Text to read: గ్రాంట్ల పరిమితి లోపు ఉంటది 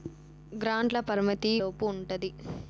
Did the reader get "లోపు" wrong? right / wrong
right